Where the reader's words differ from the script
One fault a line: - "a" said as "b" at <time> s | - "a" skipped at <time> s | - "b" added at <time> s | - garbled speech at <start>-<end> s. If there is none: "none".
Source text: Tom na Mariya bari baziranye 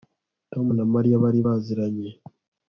none